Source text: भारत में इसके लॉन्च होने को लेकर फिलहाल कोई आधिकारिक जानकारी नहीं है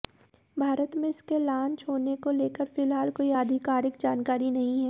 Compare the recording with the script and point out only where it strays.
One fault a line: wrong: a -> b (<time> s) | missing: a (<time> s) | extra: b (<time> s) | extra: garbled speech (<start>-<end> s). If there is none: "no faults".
no faults